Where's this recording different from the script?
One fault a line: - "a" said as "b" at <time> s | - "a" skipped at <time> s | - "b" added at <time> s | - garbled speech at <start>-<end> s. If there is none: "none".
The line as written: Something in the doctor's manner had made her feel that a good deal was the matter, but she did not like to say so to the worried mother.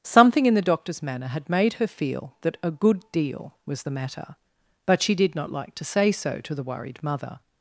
none